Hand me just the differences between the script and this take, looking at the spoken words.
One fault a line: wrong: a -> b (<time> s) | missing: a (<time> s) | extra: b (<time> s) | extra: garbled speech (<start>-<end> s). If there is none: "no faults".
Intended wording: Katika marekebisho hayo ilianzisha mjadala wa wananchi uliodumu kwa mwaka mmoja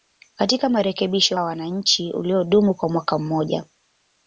missing: hayo ilianzisha mjadala (1.4 s)